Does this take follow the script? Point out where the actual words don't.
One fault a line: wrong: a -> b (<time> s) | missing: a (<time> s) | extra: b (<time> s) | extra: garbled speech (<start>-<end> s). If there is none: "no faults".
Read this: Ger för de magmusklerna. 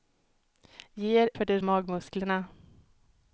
no faults